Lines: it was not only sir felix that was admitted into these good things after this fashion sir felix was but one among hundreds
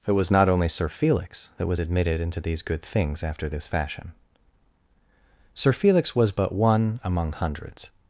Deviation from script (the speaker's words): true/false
false